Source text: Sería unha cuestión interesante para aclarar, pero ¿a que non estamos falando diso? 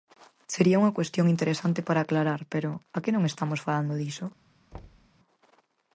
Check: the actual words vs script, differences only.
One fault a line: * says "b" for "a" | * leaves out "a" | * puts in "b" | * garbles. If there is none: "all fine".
all fine